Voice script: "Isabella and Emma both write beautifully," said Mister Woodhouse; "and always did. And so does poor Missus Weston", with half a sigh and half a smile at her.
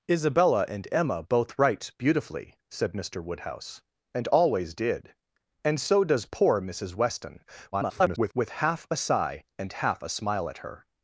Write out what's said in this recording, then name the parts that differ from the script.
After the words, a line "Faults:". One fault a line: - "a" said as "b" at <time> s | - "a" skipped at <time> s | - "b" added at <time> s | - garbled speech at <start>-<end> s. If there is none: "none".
"Isabella and Emma both write beautifully," said Mister Woodhouse; "and always did. And so does poor Missus Weston", [garbled] with half a sigh and half a smile at her.
Faults:
- garbled speech at 7.7-8.3 s